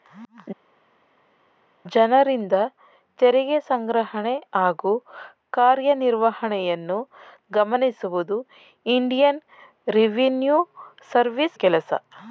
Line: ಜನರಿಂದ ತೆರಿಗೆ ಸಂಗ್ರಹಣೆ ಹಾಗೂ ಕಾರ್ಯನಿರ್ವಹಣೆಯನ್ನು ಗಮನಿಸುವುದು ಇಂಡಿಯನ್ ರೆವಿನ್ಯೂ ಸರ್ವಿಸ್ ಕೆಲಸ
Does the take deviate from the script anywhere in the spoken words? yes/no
no